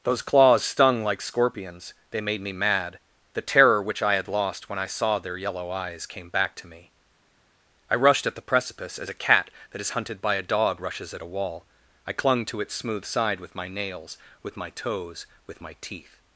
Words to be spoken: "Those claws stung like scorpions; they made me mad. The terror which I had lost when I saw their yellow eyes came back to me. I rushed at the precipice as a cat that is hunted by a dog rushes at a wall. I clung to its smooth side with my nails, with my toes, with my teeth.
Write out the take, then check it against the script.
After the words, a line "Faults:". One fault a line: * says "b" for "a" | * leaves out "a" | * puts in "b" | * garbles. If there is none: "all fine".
"Those claws stung like scorpions; they made me mad. The terror which I had lost when I saw their yellow eyes came back to me. I rushed at the precipice as a cat that is hunted by a dog rushes at a wall. I clung to its smooth side with my nails, with my toes, with my teeth.
Faults:
all fine